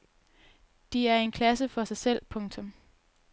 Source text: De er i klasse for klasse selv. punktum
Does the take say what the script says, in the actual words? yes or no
no